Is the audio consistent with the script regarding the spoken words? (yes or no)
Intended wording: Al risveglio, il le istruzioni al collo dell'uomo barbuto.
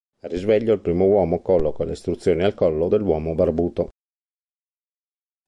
no